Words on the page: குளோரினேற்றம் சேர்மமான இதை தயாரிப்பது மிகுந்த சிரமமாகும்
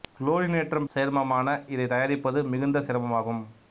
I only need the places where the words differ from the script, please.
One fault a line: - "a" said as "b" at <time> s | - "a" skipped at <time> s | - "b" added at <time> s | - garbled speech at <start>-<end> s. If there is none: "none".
none